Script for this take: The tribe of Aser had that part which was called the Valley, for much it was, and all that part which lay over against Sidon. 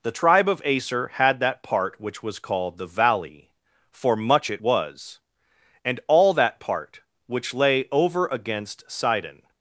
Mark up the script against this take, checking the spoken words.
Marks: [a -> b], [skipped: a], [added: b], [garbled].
The tribe of Aser had that part which was called the Valley, for much it was, and all that part which lay over against Sidon.